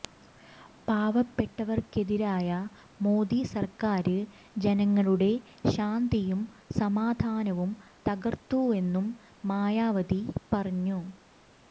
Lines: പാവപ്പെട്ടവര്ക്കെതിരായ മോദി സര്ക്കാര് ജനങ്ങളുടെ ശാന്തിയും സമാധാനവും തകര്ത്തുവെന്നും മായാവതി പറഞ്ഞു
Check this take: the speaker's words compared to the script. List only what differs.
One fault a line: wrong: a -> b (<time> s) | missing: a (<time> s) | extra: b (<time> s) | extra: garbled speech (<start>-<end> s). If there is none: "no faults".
no faults